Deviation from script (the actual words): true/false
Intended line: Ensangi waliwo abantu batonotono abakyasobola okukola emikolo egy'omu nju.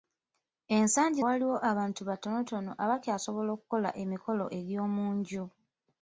false